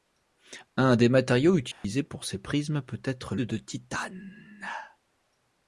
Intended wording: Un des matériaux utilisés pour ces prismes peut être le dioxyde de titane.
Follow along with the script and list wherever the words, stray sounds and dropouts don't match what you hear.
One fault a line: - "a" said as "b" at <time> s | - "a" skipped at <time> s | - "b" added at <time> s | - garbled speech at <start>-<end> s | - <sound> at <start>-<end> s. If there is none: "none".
- dropout at 1.7-1.8 s
- "le dioxyde" skipped at 3.4 s